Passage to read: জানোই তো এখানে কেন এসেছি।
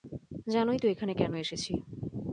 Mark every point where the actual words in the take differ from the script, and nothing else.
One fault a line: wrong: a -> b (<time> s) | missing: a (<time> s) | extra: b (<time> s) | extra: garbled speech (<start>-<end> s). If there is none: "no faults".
no faults